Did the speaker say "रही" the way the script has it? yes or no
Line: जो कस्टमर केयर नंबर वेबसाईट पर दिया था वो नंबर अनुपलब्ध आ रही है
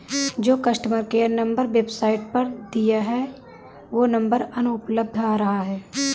no